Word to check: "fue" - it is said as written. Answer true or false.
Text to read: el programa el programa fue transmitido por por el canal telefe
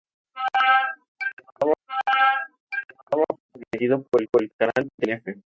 true